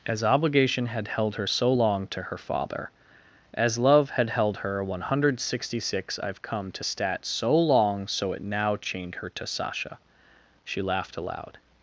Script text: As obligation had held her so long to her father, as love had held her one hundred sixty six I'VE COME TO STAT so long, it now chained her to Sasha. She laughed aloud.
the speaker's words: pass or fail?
fail